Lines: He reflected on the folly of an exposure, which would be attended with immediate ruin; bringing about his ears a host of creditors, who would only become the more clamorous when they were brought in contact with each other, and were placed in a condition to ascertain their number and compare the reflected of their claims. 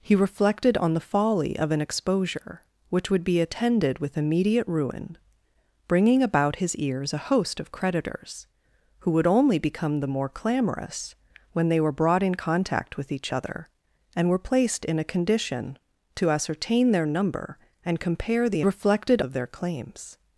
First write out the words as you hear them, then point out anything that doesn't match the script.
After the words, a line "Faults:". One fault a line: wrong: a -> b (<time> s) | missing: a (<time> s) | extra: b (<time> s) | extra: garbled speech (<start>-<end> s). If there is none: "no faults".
He reflected on the folly of an exposure, which would be attended with immediate ruin; bringing about his ears a host of creditors, who would only become the more clamorous when they were brought in contact with each other, and were placed in a condition to ascertain their number and compare the reflected of their claims.
Faults:
no faults